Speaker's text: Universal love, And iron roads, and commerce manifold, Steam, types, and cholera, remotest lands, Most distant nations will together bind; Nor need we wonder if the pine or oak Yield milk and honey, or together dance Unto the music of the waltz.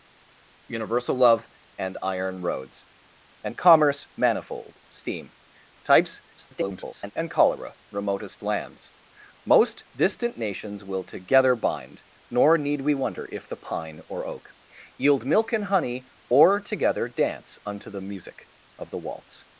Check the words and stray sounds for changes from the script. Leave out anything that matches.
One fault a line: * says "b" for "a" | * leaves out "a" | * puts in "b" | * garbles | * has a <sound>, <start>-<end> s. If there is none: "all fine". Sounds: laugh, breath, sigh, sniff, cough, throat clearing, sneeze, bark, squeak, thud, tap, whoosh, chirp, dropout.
* garbles